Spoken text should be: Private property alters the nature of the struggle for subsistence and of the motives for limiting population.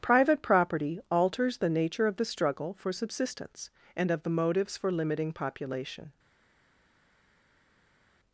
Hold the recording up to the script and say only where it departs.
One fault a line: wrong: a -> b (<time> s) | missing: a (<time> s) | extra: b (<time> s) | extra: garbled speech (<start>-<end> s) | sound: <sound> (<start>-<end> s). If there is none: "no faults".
no faults